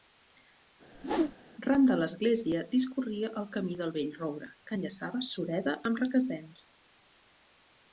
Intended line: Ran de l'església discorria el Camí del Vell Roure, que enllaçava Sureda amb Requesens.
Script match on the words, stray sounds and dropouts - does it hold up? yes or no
no